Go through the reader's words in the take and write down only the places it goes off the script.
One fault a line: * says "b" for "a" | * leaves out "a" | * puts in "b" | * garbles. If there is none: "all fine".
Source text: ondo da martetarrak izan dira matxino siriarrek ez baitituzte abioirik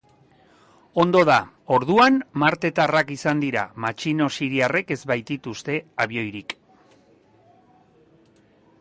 * puts in "orduan"